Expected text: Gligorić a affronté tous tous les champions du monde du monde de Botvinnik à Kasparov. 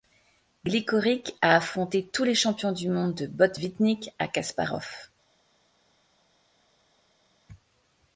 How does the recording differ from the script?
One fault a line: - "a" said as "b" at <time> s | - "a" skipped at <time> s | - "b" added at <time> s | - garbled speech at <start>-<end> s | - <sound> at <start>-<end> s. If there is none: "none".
- "tous" skipped at 2.2 s
- "du monde" skipped at 3.1 s